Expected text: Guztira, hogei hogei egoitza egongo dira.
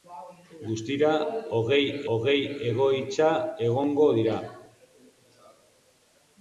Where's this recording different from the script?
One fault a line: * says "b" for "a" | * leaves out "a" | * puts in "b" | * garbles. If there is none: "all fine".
all fine